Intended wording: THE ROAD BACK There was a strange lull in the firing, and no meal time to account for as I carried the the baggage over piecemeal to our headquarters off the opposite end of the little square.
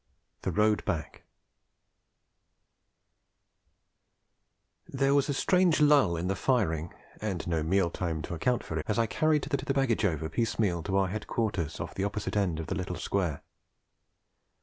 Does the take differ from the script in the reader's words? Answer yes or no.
no